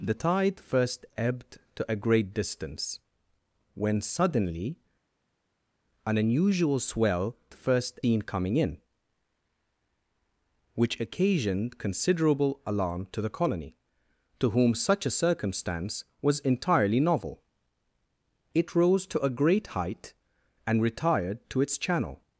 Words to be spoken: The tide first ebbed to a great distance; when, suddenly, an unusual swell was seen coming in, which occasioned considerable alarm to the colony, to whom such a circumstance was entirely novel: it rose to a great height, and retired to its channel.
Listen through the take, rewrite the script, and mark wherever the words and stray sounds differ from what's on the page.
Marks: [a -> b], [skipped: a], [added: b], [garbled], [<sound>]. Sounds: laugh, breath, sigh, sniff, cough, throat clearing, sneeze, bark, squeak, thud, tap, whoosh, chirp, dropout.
The tide first ebbed to a great distance; when, suddenly, an unusual swell [was -> first] seen coming in, which occasioned considerable alarm to the colony, to whom such a circumstance was entirely novel: it rose to a great height, and retired to its channel.